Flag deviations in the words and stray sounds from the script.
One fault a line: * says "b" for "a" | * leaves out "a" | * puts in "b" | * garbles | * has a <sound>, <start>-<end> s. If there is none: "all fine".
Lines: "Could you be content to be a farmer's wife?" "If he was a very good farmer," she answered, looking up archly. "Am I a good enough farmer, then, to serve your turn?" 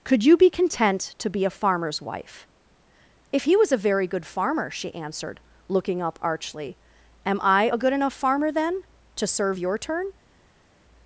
all fine